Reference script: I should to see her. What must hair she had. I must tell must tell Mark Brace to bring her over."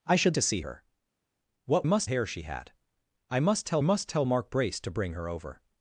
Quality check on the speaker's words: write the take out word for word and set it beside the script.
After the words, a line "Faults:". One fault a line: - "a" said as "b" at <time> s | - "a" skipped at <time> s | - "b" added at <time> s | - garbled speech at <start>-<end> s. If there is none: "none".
I should to see her. What must hair she had. I must tell must tell Mark Brace to bring her over."
Faults:
none